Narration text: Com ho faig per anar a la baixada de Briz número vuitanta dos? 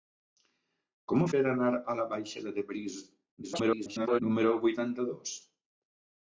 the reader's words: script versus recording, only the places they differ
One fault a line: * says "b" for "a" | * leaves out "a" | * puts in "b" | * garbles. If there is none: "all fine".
* leaves out "faig"
* garbles